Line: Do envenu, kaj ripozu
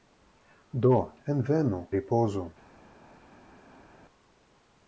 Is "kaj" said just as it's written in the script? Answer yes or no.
no